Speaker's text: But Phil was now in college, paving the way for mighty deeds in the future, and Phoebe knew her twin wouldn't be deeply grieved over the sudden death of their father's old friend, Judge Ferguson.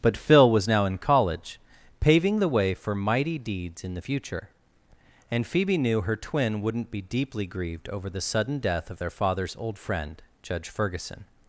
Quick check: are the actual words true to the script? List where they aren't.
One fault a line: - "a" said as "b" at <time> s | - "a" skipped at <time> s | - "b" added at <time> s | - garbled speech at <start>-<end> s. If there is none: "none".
none